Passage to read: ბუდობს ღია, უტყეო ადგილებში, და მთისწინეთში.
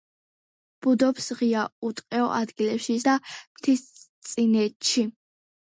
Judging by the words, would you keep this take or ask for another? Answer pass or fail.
pass